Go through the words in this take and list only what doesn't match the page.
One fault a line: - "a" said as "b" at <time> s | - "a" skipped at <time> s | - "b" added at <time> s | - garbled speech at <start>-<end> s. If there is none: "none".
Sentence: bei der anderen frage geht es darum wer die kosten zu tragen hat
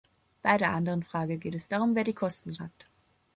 - "tragen" skipped at 2.6 s